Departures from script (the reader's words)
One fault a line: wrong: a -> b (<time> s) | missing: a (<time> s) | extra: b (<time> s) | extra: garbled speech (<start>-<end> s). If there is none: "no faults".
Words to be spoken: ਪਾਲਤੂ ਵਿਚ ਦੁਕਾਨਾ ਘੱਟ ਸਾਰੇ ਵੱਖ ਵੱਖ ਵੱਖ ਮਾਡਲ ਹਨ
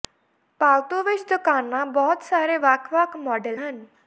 wrong: ਘੱਟ -> ਬਹੁਤ (1.9 s)
missing: ਵੱਖ (3.2 s)